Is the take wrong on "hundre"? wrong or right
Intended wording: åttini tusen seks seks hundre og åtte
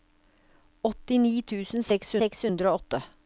right